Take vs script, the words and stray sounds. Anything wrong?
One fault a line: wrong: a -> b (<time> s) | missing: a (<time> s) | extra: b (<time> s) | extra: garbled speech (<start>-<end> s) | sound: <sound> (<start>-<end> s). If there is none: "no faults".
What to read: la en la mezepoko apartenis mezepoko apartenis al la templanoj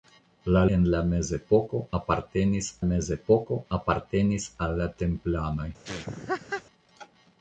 sound: laugh (5.8-6.6 s)